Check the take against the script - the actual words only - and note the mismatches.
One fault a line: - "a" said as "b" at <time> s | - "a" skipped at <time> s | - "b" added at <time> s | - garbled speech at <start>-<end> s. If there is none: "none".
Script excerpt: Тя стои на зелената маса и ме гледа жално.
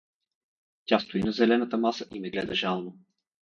none